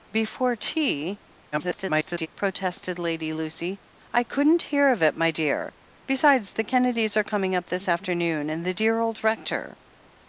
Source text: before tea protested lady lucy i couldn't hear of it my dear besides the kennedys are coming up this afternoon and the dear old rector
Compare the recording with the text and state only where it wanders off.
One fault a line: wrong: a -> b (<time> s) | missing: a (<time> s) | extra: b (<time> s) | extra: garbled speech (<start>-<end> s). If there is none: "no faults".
extra: garbled speech (1.5-2.3 s)